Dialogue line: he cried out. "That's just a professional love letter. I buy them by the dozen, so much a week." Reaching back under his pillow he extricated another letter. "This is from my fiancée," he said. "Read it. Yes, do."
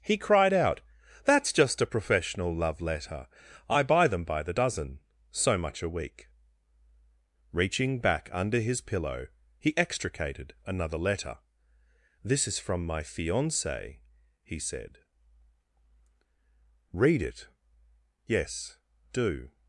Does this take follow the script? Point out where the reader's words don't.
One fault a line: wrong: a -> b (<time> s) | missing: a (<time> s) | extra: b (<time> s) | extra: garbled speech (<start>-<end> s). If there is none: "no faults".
no faults